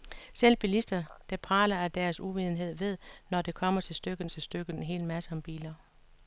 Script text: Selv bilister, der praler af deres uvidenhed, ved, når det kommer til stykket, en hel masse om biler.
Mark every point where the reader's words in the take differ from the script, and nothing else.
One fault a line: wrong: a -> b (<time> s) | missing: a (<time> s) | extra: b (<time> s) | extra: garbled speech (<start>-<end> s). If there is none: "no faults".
extra: til stykket (4.3 s)